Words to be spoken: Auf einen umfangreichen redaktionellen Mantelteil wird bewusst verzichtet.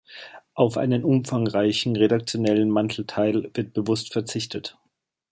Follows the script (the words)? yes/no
yes